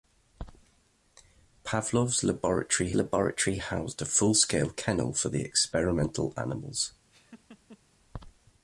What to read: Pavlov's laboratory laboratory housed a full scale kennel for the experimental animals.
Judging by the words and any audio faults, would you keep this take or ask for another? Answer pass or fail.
fail